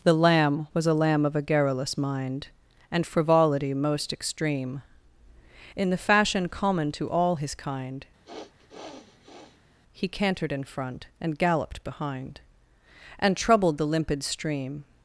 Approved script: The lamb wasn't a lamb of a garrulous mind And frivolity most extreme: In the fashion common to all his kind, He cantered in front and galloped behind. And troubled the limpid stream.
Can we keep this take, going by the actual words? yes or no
no